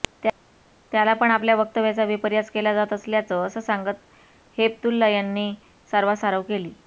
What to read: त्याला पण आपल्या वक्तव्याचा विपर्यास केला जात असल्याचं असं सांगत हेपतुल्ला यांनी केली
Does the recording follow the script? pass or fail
fail